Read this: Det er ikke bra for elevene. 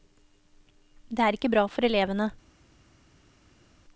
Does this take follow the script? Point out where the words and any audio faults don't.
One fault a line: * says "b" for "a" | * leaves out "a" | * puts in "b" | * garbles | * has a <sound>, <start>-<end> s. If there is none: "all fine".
all fine